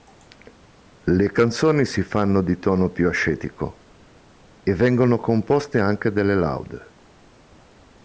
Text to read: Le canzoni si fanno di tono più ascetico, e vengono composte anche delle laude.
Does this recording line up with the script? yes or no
yes